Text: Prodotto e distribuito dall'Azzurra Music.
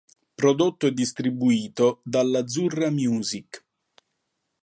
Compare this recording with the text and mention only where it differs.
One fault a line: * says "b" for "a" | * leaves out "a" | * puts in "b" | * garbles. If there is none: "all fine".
all fine